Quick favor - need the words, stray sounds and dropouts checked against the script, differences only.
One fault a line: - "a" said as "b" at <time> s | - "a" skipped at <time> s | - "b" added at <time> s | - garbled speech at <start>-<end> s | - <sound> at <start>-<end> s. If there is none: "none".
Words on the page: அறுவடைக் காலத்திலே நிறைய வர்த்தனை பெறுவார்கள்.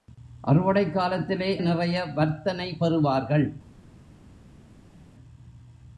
none